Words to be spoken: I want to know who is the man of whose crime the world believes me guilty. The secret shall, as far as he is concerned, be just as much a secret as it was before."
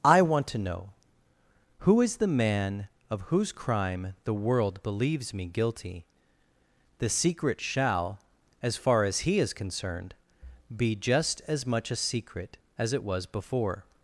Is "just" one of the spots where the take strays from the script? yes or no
no